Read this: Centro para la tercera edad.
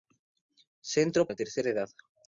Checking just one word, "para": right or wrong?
wrong